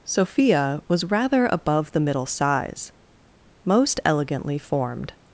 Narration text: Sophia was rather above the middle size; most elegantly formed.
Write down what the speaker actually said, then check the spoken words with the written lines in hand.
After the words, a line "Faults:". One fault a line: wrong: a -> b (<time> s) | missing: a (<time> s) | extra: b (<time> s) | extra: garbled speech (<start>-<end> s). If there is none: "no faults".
Sophia was rather above the middle size; most elegantly formed.
Faults:
no faults